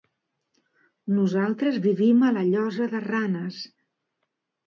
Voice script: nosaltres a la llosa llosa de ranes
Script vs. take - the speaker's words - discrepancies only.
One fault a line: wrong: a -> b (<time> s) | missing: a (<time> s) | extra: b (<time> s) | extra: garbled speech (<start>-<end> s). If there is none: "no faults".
extra: vivim (1.8 s)
missing: llosa (2.9 s)